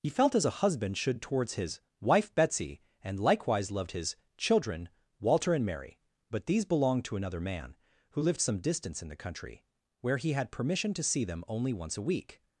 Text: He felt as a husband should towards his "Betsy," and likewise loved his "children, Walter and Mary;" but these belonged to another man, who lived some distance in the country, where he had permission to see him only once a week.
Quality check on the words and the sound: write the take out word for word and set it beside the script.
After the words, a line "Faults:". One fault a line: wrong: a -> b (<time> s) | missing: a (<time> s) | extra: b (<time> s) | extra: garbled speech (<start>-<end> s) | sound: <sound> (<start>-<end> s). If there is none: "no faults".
He felt as a husband should towards his "wife Betsy," and likewise loved his "children, Walter and Mary;" but these belonged to another man, who lived some distance in the country, where he had permission to see them only once a week.
Faults:
extra: wife (2.0 s)
wrong: him -> them (11.2 s)